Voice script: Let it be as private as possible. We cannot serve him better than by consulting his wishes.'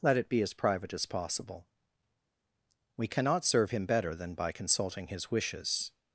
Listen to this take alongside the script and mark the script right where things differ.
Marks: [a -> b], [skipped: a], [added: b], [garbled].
Let it be as private as possible. We cannot serve him better than by consulting his wishes.'